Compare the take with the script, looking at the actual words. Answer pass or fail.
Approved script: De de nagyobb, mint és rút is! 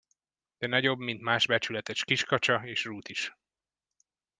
fail